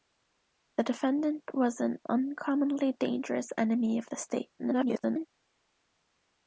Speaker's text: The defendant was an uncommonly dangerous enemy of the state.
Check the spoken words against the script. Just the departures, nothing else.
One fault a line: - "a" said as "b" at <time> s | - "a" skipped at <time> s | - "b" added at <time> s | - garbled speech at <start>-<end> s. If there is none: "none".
- garbled speech at 4.6-5.3 s